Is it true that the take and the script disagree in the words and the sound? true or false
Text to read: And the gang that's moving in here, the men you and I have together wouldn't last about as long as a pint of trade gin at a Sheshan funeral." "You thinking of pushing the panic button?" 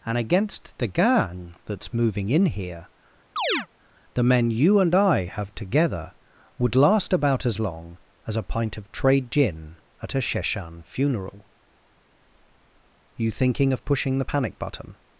true